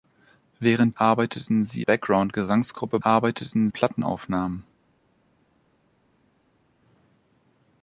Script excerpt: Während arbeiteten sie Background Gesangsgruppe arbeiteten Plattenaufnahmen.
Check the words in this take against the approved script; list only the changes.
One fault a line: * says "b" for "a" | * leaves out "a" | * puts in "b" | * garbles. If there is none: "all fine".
all fine